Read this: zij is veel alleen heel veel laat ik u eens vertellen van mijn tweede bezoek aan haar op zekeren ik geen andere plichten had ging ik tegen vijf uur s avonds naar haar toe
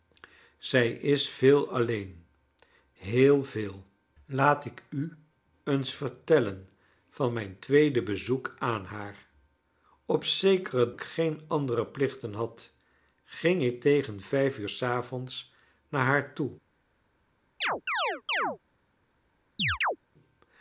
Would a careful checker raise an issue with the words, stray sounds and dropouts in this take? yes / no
yes